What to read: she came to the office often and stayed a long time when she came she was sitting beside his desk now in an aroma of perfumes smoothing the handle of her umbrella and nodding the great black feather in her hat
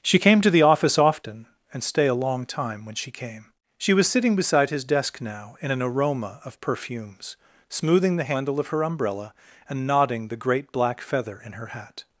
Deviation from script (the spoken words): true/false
true